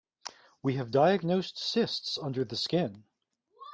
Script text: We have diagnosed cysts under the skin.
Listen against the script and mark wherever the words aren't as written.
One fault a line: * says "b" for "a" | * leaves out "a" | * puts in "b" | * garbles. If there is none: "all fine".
all fine